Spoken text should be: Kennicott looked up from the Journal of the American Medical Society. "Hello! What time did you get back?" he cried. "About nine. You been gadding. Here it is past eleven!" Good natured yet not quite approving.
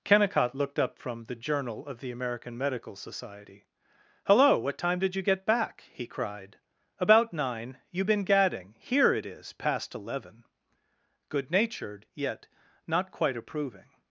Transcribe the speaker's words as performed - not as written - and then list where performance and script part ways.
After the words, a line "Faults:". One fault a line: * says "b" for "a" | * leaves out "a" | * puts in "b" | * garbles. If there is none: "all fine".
Kennicott looked up from the Journal of the American Medical Society. "Hello! What time did you get back?" he cried. "About nine. You been gadding. Here it is past eleven!" Good natured yet not quite approving.
Faults:
all fine